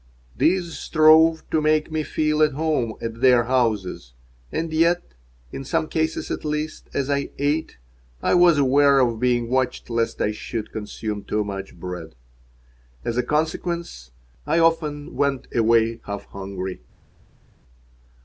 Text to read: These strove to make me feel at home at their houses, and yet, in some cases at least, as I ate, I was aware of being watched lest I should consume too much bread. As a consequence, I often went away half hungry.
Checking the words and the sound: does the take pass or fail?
pass